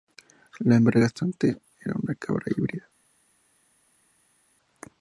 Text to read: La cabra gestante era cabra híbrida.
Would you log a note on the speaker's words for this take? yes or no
yes